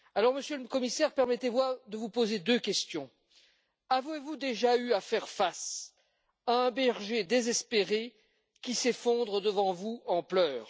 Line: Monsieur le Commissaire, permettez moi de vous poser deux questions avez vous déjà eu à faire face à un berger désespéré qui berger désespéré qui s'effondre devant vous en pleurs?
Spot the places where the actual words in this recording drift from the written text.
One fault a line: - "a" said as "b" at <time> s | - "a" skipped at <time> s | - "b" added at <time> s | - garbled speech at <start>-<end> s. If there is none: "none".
- "berger désespéré qui" skipped at 8.7 s